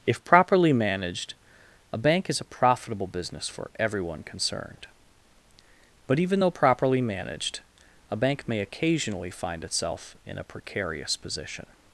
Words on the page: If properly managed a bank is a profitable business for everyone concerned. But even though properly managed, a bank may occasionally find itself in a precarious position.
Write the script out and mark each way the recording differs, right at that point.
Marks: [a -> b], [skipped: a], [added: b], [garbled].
If properly managed a bank is a profitable business for everyone concerned. But even though properly managed, a bank may occasionally find itself in a precarious position.